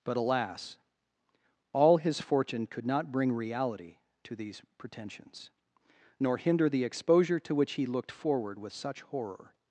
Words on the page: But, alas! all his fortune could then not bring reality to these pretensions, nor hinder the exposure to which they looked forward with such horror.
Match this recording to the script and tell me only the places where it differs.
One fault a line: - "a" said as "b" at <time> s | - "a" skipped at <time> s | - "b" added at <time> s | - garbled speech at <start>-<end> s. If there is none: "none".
- "then" skipped at 2.9 s
- "they" said as "he" at 7.7 s